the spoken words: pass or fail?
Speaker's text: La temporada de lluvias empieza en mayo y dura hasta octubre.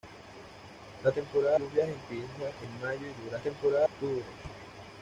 fail